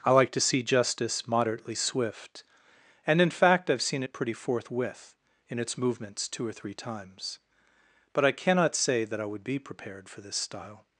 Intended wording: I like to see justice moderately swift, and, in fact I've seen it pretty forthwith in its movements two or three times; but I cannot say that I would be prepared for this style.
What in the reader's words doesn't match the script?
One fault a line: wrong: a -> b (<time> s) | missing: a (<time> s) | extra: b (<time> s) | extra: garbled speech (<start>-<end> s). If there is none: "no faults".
no faults